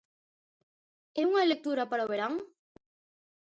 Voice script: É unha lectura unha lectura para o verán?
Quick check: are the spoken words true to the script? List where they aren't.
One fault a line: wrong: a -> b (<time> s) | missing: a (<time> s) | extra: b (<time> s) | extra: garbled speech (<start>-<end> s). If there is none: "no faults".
missing: unha lectura (1.8 s)